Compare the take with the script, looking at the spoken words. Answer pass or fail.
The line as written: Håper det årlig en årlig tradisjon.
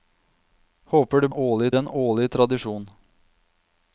pass